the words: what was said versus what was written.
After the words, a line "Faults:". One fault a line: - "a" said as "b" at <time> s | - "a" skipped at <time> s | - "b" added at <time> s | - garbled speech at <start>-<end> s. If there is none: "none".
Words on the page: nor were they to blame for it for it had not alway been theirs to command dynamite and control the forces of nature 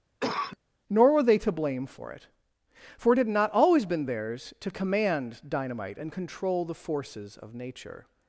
nor were they to blame for it for it had not always been theirs to command dynamite and control the forces of nature
Faults:
- "alway" said as "always" at 3.5 s